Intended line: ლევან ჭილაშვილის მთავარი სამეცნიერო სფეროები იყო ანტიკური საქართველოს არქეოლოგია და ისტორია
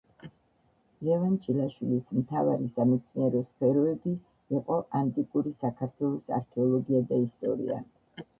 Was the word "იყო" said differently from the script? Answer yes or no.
no